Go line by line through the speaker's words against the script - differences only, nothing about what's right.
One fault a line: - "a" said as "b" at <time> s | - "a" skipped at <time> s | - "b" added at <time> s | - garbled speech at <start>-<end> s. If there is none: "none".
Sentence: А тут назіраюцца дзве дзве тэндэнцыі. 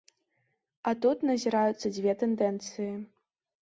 - "дзве" skipped at 2.2 s